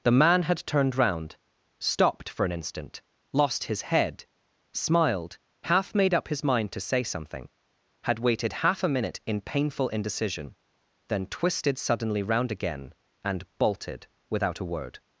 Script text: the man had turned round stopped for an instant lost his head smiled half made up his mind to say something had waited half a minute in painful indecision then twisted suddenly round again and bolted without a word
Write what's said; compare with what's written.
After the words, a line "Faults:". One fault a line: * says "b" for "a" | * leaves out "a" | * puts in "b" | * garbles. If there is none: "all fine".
the man had turned round stopped for an instant lost his head smiled half made up his mind to say something had waited half a minute in painful indecision then twisted suddenly round again and bolted without a word
Faults:
all fine